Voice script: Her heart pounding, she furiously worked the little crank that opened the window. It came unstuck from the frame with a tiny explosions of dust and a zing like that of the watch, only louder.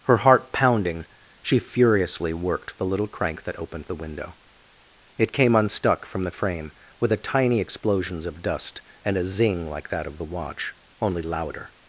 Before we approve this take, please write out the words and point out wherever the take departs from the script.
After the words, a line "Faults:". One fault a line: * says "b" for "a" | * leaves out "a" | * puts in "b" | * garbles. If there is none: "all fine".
Her heart pounding, she furiously worked the little crank that opened the window. It came unstuck from the frame with a tiny explosions of dust and a zing like that of the watch, only louder.
Faults:
all fine